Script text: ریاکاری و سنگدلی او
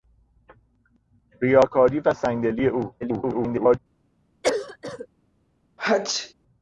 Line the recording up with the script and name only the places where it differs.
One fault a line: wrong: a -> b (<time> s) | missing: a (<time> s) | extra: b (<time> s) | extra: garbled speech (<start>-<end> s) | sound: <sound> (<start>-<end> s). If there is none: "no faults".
extra: garbled speech (3.0-3.8 s)
sound: cough (4.4-5.1 s)
sound: sneeze (5.8-6.3 s)